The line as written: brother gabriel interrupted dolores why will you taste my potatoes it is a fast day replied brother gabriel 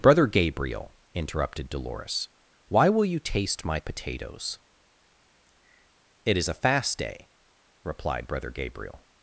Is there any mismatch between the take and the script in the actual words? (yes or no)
no